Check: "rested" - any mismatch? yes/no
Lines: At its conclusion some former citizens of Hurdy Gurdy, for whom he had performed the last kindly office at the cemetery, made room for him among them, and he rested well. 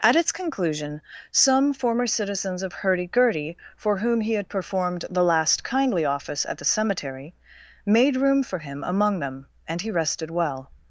no